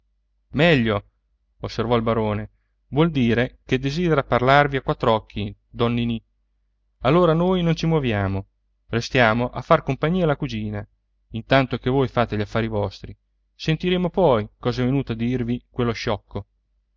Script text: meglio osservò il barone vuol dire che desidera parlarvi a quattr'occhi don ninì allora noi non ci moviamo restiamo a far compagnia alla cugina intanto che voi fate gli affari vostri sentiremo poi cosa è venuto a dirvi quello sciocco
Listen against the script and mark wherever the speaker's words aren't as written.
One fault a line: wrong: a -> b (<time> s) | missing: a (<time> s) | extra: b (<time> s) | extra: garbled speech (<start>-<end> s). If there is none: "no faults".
no faults